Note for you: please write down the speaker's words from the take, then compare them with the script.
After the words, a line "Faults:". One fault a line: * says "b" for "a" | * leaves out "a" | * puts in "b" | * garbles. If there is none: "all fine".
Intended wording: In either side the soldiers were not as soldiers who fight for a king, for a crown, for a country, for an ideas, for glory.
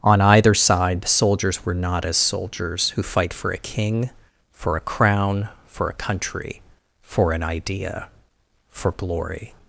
On either side the soldiers were not as soldiers who fight for a king, for a crown, for a country, for an idea, for glory.
Faults:
* says "On" for "In"
* says "idea" for "ideas"